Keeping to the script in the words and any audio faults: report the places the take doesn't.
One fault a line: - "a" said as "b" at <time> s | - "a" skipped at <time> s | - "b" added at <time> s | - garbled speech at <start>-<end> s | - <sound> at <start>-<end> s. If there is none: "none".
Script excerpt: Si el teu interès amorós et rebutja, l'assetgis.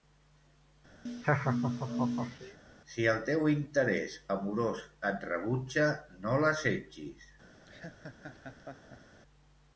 - laugh at 1.1-2.6 s
- "no" added at 6.3 s
- laugh at 7.7-9.2 s